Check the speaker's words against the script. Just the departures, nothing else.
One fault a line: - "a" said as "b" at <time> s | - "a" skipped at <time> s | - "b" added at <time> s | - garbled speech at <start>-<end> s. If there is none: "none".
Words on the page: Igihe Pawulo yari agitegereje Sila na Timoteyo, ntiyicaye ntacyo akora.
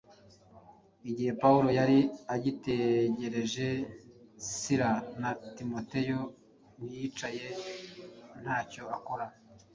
none